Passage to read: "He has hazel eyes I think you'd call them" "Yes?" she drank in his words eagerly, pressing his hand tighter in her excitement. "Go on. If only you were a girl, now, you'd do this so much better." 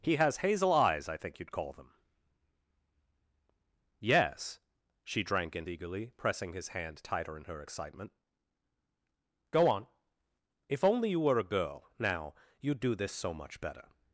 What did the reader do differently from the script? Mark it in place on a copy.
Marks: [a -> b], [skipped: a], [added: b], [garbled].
"He has hazel eyes I think you'd call them" "Yes?" she drank in [skipped: his words] eagerly, pressing his hand tighter in her excitement. "Go on. If only you were a girl, now, you'd do this so much better."